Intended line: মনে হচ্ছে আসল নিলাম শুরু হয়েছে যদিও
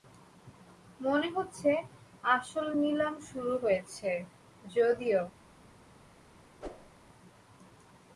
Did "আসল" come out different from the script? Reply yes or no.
no